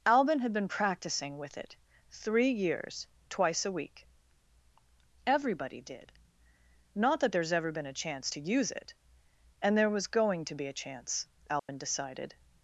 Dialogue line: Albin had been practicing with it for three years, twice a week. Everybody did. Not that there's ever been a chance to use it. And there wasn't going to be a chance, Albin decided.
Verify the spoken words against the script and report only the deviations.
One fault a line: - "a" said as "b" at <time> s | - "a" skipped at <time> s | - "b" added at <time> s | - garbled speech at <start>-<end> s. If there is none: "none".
- "for" skipped at 1.8 s
- "wasn't" said as "was" at 9.9 s